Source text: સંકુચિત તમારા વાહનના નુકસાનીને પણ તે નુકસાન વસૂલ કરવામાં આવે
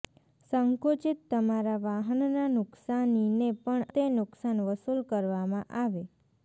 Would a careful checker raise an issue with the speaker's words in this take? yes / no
no